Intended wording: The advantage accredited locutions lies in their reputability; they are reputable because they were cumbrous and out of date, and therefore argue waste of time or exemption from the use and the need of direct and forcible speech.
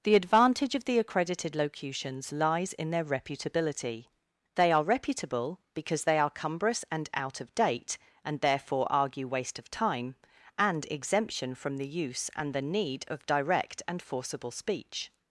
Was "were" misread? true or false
true